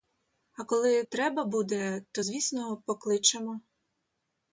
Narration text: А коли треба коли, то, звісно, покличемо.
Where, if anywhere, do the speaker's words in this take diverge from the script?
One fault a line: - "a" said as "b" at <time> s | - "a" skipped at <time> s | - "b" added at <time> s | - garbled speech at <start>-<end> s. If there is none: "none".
- "коли" said as "буде" at 1.4 s